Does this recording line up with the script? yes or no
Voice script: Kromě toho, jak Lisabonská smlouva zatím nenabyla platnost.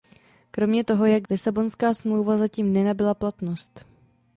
yes